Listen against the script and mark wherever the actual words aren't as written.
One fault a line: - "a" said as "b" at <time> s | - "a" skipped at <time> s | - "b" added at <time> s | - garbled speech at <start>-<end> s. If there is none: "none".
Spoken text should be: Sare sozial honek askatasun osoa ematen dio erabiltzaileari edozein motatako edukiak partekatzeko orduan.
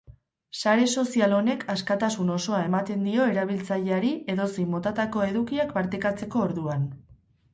none